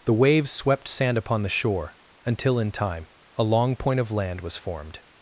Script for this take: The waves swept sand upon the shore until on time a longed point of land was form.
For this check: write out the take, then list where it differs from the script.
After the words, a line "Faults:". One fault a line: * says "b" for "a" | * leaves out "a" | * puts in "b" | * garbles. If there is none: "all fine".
The waves swept sand upon the shore until in time a long point of land was formed.
Faults:
* says "in" for "on"
* says "long" for "longed"
* says "formed" for "form"